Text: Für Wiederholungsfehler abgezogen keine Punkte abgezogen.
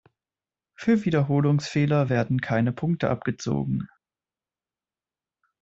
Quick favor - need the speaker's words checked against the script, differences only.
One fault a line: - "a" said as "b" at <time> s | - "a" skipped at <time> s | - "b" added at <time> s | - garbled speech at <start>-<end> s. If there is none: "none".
- "abgezogen" said as "werden" at 2.1 s